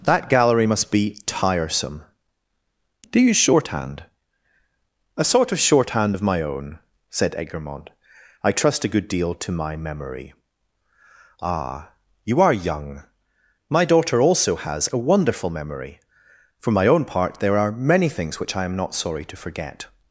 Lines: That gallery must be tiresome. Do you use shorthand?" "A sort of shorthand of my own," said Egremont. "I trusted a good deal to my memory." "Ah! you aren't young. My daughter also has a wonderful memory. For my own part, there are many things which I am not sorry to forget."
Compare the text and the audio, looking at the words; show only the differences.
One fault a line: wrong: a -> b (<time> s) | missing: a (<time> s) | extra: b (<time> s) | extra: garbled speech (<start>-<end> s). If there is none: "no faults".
wrong: trusted -> trust (8.5 s)
wrong: aren't -> are (12.4 s)